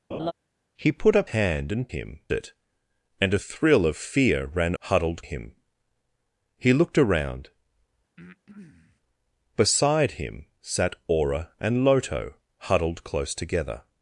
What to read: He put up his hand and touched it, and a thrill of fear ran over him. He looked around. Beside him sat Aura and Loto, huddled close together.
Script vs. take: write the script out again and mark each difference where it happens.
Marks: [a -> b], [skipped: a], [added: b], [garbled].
He put up [skipped: his] hand and [touched -> him] it, and a thrill of fear ran [over -> huddled] him. He looked around. Beside him sat Aura and Loto, huddled close together.